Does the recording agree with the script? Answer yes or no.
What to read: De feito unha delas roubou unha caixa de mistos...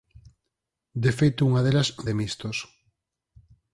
no